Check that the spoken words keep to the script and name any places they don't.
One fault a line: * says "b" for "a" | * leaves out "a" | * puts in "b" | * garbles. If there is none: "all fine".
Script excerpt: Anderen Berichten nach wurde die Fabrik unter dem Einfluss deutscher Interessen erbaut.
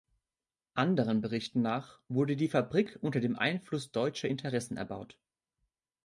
all fine